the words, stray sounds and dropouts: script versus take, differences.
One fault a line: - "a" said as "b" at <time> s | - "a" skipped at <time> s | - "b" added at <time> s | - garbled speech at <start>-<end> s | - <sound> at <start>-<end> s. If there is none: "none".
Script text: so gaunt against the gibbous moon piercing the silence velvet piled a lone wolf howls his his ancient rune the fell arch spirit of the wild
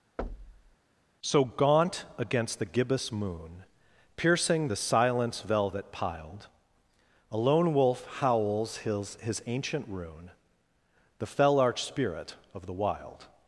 - thud at 0.2-0.8 s